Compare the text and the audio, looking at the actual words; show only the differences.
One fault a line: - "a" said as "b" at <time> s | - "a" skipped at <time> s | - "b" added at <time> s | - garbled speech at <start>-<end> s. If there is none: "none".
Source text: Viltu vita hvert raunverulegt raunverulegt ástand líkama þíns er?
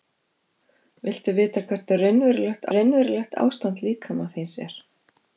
none